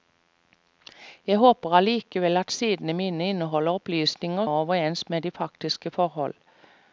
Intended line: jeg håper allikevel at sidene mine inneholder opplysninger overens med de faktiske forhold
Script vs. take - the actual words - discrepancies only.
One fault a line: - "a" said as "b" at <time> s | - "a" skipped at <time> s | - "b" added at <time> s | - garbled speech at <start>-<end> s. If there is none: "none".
none